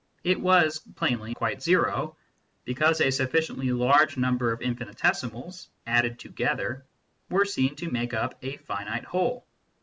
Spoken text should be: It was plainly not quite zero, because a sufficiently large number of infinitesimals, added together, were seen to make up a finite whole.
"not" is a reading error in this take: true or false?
true